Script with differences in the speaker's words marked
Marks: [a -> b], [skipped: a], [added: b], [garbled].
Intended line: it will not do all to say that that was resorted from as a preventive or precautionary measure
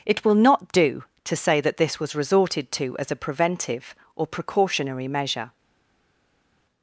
it will not do [skipped: all] to say that [that -> this] was resorted [from -> to] as a preventive or precautionary measure